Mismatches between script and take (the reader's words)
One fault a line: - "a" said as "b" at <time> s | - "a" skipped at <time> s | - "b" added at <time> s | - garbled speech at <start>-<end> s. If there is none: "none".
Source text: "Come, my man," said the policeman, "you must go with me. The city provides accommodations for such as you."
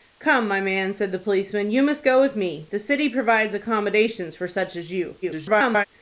- garbled speech at 5.2-5.8 s